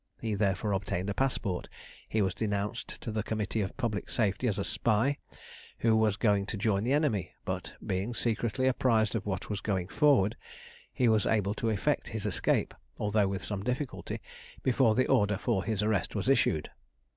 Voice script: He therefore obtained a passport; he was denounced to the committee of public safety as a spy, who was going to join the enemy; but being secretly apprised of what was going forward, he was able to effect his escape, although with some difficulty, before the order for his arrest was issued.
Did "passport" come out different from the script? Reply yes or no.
no